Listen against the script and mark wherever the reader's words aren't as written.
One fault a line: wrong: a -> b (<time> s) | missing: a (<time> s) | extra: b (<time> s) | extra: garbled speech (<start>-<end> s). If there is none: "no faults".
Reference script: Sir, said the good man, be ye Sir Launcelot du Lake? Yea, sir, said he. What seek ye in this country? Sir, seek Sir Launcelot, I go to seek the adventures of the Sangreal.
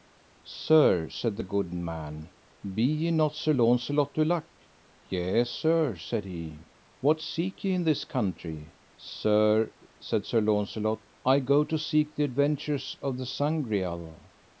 extra: not (3.1 s)
wrong: seek -> said (10.0 s)